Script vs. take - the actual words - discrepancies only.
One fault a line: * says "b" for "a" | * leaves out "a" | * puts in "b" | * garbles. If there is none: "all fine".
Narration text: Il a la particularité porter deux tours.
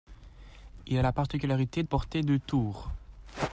all fine